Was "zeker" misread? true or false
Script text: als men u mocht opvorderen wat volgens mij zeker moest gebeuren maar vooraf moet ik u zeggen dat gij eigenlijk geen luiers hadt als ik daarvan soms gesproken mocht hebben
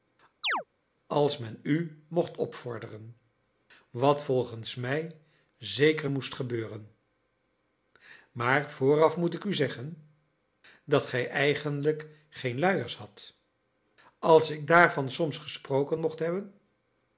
false